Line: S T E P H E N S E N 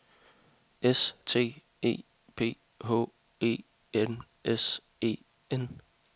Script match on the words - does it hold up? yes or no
yes